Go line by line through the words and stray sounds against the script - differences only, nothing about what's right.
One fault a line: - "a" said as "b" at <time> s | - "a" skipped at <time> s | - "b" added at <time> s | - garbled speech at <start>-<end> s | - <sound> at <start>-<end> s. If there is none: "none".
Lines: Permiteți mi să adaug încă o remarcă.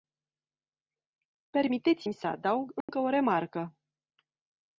- dropout at 2.8-2.9 s